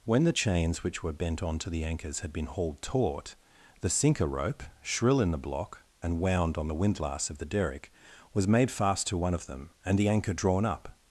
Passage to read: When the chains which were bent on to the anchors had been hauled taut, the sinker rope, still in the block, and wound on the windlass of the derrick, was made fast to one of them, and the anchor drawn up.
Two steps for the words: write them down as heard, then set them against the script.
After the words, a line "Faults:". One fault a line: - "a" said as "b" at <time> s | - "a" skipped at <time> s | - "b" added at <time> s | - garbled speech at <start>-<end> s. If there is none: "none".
When the chains which were bent on to the anchors had been hauled taut, the sinker rope, shrill in the block, and wound on the windlass of the derrick, was made fast to one of them, and the anchor drawn up.
Faults:
- "still" said as "shrill" at 4.8 s